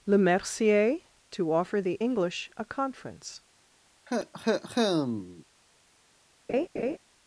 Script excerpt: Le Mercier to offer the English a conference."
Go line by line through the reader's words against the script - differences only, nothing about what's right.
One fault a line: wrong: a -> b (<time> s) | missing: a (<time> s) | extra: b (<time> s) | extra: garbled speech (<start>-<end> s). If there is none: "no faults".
no faults